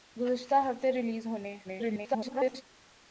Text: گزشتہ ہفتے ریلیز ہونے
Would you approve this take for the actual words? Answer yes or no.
no